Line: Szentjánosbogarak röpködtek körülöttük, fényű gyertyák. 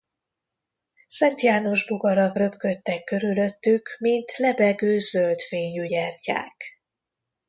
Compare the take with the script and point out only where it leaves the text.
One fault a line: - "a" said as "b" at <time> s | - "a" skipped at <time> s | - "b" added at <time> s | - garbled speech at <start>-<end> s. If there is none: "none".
- "mint lebegő zöld" added at 4.0 s